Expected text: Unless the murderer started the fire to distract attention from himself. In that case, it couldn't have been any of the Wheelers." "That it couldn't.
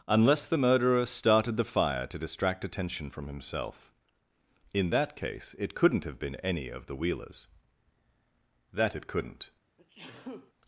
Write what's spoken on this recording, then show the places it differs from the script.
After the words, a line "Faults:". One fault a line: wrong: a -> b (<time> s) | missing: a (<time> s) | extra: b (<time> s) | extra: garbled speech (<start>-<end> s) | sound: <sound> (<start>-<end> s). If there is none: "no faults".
Unless the murderer started the fire to distract attention from himself. In that case, it couldn't have been any of the Wheelers." "That it couldn't.
Faults:
sound: sneeze (9.8-10.5 s)